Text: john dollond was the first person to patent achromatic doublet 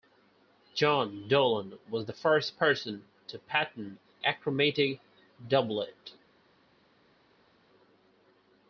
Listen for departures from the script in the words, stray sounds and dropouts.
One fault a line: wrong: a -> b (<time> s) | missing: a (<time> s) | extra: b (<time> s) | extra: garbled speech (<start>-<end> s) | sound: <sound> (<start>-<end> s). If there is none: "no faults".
no faults